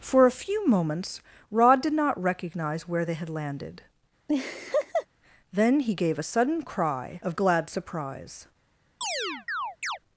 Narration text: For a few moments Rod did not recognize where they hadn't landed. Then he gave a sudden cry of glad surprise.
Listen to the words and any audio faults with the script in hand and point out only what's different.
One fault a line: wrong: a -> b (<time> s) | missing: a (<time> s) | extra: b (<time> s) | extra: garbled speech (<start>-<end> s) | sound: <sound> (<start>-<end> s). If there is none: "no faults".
wrong: hadn't -> had (3.1 s)
sound: laugh (4.3-5.1 s)
sound: chirp (9.0-10.0 s)